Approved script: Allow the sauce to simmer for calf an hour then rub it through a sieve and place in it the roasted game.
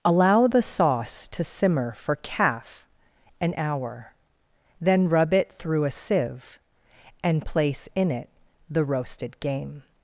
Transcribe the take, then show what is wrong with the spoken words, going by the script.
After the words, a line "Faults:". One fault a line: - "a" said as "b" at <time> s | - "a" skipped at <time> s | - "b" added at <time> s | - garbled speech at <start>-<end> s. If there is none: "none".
Allow the sauce to simmer for calf an hour then rub it through a sieve and place in it the roasted game.
Faults:
none